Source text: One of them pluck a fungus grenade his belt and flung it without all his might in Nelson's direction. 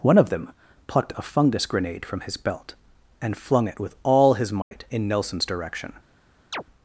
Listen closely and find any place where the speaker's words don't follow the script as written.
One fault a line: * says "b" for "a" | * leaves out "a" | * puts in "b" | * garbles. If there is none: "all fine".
* says "plucked" for "pluck"
* puts in "from"
* says "with" for "without"